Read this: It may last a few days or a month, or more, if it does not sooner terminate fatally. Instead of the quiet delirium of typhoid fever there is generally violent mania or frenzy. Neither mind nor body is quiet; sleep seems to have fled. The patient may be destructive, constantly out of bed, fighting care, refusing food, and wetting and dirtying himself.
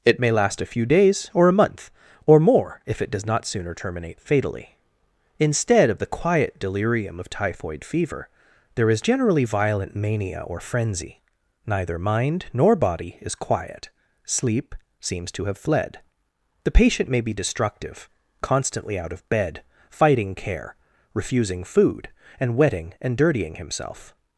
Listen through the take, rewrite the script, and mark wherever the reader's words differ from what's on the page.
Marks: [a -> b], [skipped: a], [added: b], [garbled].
It may last a few days or a month, or more, if it does not sooner terminate fatally. Instead of the quiet delirium of typhoid fever there is generally violent mania or frenzy. Neither mind nor body is quiet; sleep seems to have fled. The patient may be destructive, constantly out of bed, fighting care, refusing food, and wetting and dirtying himself.